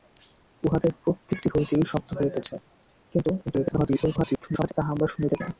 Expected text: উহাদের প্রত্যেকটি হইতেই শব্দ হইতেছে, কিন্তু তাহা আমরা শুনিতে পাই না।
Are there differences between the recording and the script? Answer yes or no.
yes